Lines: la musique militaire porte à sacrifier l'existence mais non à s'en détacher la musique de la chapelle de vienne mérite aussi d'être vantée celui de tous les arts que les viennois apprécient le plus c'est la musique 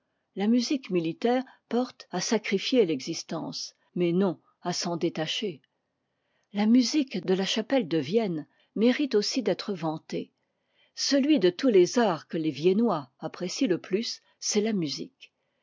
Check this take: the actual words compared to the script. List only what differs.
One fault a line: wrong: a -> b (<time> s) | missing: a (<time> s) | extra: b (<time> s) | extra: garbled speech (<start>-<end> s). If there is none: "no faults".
no faults